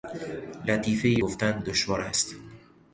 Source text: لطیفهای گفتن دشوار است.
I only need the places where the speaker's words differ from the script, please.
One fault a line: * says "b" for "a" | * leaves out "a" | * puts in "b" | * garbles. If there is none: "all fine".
all fine